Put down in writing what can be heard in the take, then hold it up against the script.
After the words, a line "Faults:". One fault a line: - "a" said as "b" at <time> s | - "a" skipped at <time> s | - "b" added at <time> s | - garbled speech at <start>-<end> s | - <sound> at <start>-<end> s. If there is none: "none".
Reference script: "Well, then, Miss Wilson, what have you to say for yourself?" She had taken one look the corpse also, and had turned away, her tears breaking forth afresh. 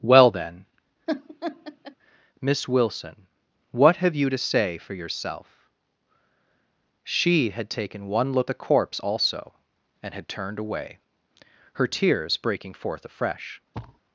"Well, then, Miss Wilson, what have you to say for yourself?" She had taken one look the corpse also, and had turned away, her tears breaking forth afresh.
Faults:
- laugh at 1.1-2.0 s
- thud at 13.7-14.0 s